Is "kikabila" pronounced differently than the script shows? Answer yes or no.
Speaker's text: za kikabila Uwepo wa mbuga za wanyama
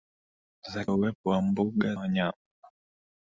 yes